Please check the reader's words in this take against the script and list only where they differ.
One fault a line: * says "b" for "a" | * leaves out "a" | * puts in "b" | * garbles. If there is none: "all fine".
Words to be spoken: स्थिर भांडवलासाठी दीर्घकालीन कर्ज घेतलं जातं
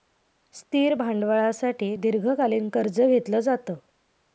all fine